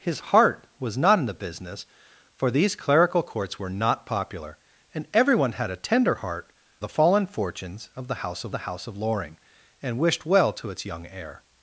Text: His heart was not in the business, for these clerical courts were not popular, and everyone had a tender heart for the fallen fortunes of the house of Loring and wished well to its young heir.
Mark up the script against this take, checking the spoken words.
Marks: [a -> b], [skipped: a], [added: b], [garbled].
His heart was not in the business, for these clerical courts were not popular, and everyone had a tender heart [skipped: for] the fallen fortunes of the house of [added: the house of] Loring and wished well to its young heir.